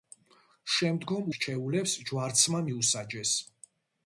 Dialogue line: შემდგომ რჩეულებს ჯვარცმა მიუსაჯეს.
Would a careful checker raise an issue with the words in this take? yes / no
no